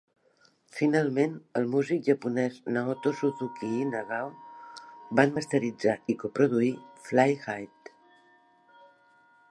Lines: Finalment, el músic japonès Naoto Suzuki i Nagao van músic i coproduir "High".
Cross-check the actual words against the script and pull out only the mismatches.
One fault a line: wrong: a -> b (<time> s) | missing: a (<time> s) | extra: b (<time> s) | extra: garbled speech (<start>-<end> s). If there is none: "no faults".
wrong: músic -> masteritzar (5.4 s)
extra: Fly (7.1 s)